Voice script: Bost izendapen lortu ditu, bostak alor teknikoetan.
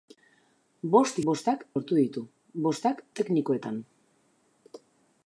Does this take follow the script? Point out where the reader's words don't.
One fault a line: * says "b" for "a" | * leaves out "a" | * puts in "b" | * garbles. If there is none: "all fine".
* says "bostak" for "izendapen"
* leaves out "alor"